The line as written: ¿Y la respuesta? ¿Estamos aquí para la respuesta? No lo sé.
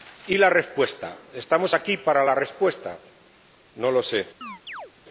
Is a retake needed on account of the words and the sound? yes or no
yes